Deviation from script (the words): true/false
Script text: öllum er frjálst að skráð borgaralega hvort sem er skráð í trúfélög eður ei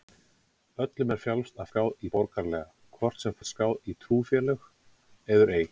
false